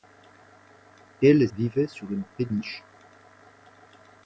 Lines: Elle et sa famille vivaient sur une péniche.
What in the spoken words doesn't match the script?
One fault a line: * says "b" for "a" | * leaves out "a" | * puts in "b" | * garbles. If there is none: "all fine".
* leaves out "sa famille"